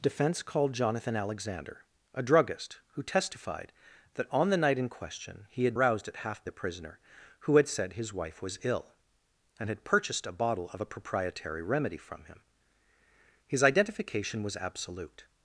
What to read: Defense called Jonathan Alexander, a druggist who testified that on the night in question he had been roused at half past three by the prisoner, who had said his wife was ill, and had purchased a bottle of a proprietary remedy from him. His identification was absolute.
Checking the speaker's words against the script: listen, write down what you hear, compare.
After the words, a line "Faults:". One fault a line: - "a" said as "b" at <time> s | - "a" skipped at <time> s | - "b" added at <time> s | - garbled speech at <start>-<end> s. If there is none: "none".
Defense called Jonathan Alexander, a druggist who testified that on the night in question he had roused at half the prisoner, who had said his wife was ill, and had purchased a bottle of a proprietary remedy from him. His identification was absolute.
Faults:
- "been" skipped at 5.8 s
- "past three by" skipped at 6.4 s